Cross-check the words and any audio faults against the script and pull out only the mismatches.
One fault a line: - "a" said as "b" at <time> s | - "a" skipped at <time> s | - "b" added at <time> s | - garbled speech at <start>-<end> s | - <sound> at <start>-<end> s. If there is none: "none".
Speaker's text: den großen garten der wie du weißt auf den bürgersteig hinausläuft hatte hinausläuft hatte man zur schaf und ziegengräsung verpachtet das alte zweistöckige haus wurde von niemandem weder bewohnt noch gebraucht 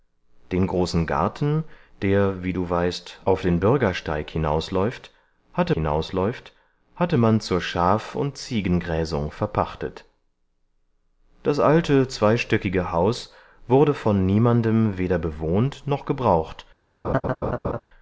- laugh at 17.0-17.8 s